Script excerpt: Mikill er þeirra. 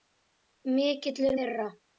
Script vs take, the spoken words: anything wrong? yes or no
no